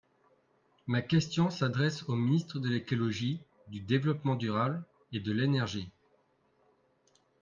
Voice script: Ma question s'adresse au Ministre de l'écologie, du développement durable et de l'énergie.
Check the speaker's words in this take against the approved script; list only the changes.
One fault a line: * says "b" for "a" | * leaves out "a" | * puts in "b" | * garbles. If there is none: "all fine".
all fine